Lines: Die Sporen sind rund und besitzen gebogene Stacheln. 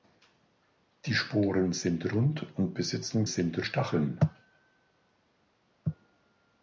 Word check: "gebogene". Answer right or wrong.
wrong